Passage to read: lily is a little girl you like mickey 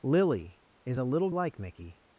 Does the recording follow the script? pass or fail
fail